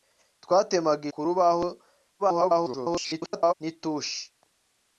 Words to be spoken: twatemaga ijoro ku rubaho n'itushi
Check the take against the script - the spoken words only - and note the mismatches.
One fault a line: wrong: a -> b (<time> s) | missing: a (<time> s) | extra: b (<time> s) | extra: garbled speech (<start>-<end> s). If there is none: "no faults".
missing: ijoro (1.1 s)
extra: garbled speech (2.2-3.5 s)